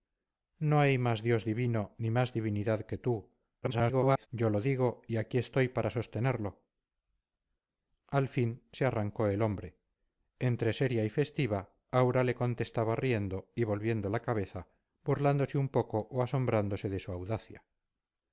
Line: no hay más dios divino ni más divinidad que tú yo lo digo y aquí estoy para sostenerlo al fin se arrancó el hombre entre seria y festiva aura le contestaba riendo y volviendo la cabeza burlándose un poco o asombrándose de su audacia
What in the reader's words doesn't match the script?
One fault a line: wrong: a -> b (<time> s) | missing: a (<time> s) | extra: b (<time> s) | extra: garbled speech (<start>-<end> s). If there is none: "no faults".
extra: garbled speech (3.6-4.3 s)